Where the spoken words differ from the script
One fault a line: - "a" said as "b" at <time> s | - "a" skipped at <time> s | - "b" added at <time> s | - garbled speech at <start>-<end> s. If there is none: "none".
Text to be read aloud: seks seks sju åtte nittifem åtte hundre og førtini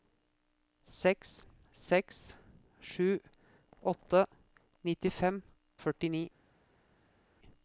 - "åtte hundre" skipped at 5.4 s